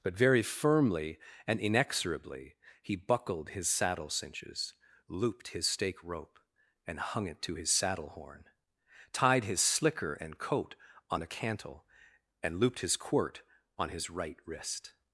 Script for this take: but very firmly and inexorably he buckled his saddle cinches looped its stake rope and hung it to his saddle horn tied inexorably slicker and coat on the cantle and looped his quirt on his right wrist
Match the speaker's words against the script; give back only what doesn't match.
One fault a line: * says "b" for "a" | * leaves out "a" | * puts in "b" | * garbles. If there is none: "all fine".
* says "his" for "its"
* says "his" for "inexorably"